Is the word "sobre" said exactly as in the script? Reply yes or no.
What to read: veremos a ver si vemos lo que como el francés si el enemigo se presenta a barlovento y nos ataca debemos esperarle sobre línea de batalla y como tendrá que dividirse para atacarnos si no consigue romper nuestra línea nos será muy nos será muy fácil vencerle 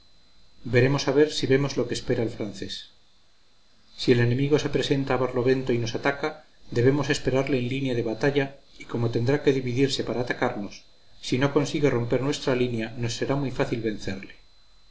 no